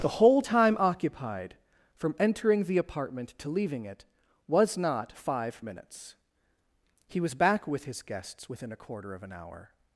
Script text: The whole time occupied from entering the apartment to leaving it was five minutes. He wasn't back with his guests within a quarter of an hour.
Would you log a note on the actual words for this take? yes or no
yes